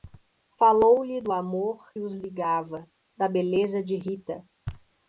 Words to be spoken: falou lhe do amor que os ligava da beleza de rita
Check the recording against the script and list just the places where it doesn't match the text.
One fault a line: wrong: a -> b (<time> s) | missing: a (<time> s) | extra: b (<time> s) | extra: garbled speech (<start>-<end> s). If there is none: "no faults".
missing: que (1.9 s)